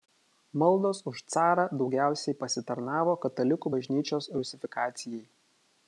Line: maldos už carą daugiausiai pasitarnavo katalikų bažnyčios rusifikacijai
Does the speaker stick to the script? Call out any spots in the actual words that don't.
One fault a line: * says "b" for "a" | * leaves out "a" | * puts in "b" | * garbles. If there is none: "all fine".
all fine